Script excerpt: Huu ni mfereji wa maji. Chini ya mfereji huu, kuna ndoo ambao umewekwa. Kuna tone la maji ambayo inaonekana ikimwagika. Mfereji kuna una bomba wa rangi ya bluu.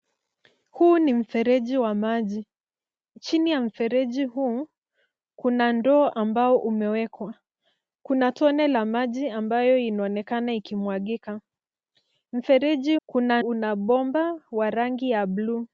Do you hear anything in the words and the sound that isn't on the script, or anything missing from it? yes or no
no